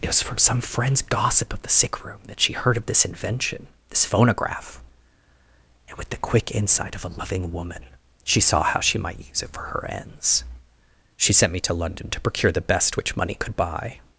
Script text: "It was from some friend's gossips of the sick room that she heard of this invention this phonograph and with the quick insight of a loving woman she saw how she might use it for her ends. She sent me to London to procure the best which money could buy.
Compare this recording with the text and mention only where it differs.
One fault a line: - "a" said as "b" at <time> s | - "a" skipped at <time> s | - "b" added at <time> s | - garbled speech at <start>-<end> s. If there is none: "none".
- "gossips" said as "gossip" at 1.0 s